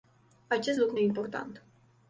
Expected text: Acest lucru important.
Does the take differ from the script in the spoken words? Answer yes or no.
no